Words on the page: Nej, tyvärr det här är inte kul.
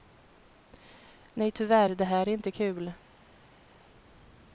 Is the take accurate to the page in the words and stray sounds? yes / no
yes